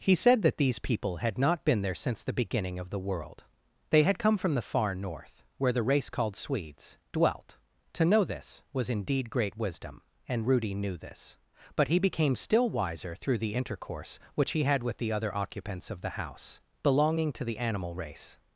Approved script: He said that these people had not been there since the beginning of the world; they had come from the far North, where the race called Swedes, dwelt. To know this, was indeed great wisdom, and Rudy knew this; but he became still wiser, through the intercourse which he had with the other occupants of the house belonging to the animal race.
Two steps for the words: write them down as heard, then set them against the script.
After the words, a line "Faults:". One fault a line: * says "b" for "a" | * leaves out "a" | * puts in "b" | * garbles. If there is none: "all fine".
He said that these people had not been there since the beginning of the world; they had come from the far North, where the race called Swedes, dwelt. To know this, was indeed great wisdom, and Rudy knew this; but he became still wiser, through the intercourse which he had with the other occupants of the house belonging to the animal race.
Faults:
all fine